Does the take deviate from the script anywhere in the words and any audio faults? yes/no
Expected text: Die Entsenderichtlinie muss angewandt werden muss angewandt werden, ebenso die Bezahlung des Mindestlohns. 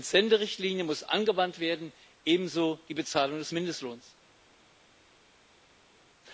yes